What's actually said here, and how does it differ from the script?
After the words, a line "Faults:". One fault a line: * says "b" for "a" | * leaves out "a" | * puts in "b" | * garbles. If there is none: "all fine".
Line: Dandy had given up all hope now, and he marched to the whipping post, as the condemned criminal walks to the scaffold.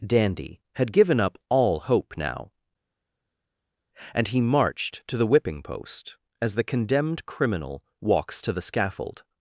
Dandy had given up all hope now, and he marched to the whipping post, as the condemned criminal walks to the scaffold.
Faults:
all fine